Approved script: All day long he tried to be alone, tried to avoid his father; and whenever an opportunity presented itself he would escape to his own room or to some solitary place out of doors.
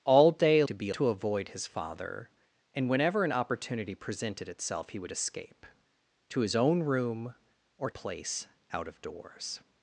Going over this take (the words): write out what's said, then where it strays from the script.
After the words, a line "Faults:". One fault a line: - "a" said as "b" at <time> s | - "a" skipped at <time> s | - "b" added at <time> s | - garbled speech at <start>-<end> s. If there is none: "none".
All day to be to avoid his father; and whenever an opportunity presented itself he would escape to his own room or place out of doors.
Faults:
- "long he tried" skipped at 0.6 s
- "alone tried" skipped at 0.9 s
- "to some solitary" skipped at 7.9 s